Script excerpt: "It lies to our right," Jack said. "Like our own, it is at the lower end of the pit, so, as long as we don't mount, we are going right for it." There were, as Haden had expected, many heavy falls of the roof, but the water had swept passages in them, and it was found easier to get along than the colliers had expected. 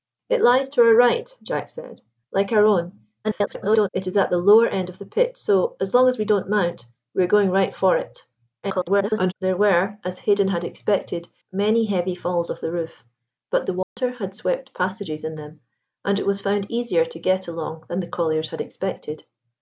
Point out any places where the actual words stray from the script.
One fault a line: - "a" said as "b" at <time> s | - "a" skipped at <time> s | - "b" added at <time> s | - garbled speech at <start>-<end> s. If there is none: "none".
- garbled speech at 3.2-3.9 s
- garbled speech at 8.6-9.3 s